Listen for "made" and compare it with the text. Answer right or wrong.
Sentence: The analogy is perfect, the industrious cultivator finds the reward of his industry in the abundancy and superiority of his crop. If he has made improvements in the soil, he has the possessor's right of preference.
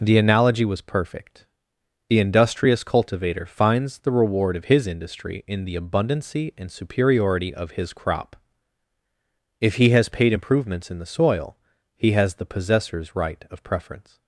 wrong